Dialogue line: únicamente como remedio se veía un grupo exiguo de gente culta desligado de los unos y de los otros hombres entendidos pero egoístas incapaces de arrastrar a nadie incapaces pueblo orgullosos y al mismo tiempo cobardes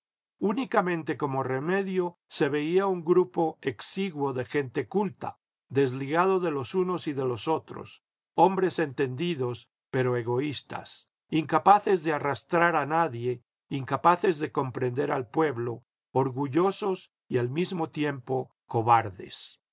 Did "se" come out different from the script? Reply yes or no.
no